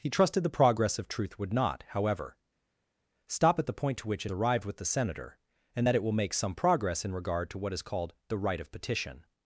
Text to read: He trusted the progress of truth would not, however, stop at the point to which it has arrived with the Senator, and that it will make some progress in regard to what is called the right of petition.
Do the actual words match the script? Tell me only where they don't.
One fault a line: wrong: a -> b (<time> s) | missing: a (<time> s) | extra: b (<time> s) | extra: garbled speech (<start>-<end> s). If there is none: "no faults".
missing: has (4.3 s)